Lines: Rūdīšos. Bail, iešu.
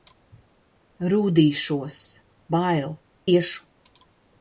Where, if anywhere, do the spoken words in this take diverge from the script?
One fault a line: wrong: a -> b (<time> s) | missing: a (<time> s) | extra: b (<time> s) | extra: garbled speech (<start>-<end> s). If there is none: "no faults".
no faults